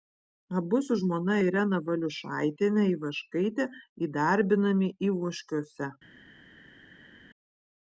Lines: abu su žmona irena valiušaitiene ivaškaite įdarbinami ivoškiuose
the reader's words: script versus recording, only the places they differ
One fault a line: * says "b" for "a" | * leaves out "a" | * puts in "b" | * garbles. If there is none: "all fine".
all fine